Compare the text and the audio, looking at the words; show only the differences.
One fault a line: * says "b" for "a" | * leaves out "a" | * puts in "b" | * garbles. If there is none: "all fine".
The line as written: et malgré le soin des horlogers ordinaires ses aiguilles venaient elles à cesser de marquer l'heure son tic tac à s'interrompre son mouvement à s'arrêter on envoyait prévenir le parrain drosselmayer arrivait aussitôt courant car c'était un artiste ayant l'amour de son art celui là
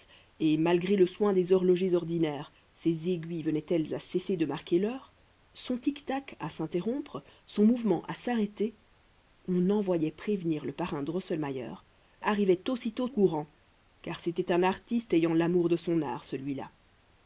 all fine